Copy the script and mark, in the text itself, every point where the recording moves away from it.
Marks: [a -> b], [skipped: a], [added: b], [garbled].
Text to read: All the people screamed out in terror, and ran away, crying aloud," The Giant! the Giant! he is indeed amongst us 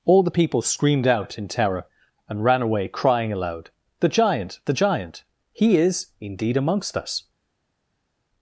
All the people screamed out in terror, and ran away, crying aloud," The Giant! the Giant! he is indeed amongst us